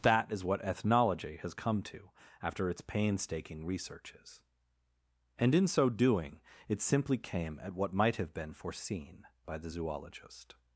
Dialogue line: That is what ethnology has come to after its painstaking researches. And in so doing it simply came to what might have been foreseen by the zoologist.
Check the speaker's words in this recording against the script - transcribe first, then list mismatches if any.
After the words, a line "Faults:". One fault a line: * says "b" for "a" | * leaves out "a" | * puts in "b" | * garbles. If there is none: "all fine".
That is what ethnology has come to after its painstaking researches. And in so doing it simply came at what might have been foreseen by the zoologist.
Faults:
* says "at" for "to"